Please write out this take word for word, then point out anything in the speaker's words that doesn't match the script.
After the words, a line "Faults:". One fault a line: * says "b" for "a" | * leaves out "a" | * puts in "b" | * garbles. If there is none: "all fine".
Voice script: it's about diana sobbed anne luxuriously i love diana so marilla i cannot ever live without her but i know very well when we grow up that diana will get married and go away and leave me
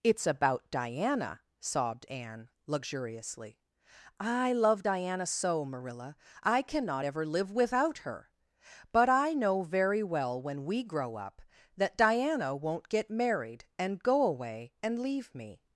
it's about diana sobbed anne luxuriously i love diana so marilla i cannot ever live without her but i know very well when we grow up that diana won't get married and go away and leave me
Faults:
* says "won't" for "will"